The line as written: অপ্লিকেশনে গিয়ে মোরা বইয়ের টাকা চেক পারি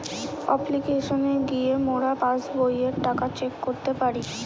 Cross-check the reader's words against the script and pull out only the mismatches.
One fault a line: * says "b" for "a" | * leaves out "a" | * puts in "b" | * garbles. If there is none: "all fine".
* puts in "পাস্"
* puts in "করতে"